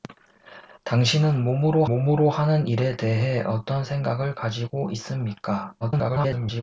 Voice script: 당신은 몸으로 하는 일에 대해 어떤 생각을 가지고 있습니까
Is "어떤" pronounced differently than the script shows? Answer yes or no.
no